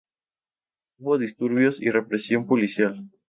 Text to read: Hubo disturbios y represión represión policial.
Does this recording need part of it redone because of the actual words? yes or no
yes